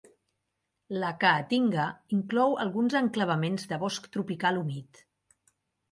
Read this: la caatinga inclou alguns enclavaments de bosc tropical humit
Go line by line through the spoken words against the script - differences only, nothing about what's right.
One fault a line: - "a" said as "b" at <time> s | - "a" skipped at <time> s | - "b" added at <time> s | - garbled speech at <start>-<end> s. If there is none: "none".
none